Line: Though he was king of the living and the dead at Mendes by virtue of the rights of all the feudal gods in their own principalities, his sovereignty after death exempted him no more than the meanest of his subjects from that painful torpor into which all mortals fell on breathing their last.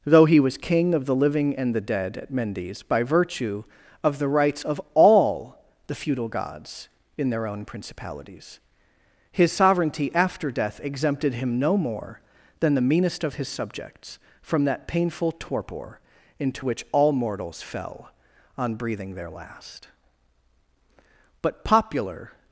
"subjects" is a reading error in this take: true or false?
false